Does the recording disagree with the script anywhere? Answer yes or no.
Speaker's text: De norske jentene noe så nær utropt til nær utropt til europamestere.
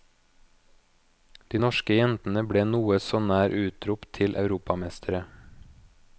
yes